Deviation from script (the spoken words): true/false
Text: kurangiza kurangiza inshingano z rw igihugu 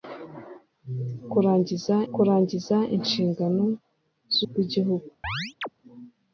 false